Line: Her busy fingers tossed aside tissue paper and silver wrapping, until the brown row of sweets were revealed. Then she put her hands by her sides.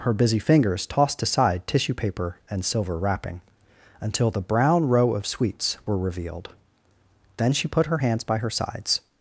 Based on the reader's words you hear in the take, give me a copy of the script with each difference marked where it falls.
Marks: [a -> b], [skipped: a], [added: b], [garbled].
Her busy fingers tossed aside tissue paper and silver wrapping, until the brown row of sweets were revealed. Then she put her hands by her sides.